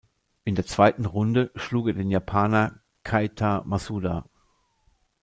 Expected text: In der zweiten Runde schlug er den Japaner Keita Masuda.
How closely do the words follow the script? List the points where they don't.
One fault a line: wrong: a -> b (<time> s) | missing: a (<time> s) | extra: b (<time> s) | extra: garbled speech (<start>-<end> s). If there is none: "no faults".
no faults